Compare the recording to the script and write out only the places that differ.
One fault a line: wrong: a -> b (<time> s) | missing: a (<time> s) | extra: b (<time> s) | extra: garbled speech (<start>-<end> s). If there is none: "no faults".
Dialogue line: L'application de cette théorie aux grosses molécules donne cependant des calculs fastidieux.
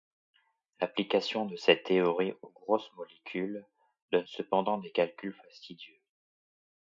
no faults